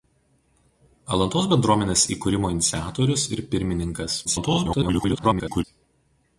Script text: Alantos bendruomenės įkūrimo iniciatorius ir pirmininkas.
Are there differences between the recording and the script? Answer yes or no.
yes